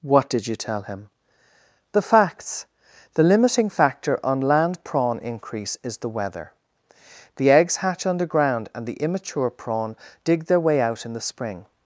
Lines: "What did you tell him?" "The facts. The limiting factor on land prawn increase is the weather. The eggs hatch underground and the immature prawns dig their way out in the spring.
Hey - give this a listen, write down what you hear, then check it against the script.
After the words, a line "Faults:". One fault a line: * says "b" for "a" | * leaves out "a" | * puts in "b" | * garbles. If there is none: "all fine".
"What did you tell him?" "The facts. The limiting factor on land prawn increase is the weather. The eggs hatch underground and the immature prawn dig their way out in the spring.
Faults:
* says "prawn" for "prawns"